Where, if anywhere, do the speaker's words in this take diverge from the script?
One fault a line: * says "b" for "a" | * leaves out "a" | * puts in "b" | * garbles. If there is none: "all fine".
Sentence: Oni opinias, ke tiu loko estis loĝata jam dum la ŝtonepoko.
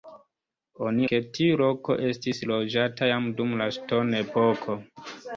* leaves out "opinias"